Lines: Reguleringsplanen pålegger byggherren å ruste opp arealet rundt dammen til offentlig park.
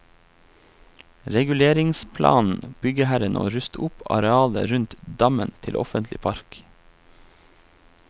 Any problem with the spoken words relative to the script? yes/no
yes